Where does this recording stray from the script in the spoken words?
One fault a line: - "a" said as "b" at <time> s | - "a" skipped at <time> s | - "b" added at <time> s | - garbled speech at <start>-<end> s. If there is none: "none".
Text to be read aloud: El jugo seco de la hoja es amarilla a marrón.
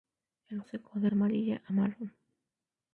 - "jugo" skipped at 0.6 s
- "la hoja es" skipped at 1.1 s